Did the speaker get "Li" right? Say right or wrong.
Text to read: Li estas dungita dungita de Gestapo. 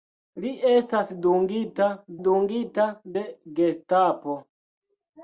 right